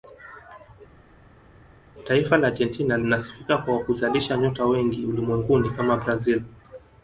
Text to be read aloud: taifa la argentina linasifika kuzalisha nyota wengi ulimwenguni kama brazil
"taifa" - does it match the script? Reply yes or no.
yes